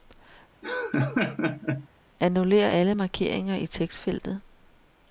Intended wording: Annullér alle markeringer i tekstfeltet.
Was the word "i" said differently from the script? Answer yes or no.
no